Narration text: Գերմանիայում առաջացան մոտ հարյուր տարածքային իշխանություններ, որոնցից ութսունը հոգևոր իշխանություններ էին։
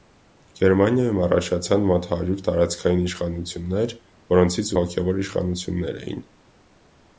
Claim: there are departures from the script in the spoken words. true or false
true